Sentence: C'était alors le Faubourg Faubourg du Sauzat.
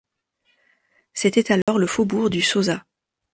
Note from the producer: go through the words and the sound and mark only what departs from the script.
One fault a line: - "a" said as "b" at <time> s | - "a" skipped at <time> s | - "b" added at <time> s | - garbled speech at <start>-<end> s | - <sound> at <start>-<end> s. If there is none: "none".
- dropout at 1.6-1.7 s
- "Faubourg" skipped at 2.3 s